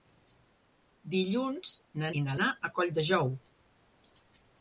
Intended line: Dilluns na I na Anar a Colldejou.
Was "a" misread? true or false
false